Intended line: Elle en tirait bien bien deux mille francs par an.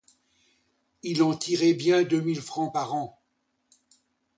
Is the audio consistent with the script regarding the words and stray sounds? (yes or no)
no